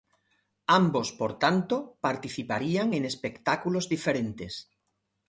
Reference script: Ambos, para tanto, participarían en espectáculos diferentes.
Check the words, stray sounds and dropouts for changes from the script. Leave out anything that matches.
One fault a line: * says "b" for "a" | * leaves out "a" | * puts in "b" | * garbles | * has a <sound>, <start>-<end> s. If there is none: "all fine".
* says "por" for "para"